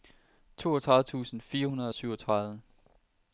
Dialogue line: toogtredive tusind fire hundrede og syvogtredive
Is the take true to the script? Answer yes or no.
yes